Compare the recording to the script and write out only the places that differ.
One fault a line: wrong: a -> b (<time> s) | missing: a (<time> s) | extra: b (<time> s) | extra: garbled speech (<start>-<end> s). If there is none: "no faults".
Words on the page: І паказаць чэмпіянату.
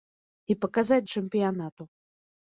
no faults